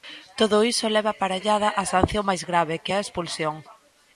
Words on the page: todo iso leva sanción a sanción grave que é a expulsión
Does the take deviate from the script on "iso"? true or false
false